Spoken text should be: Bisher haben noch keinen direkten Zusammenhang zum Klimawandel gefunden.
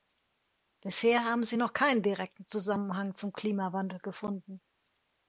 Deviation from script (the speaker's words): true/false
true